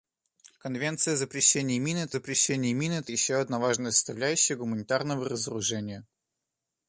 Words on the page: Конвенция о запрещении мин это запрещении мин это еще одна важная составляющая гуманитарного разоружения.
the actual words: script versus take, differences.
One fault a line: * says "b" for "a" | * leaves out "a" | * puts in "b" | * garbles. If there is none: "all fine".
all fine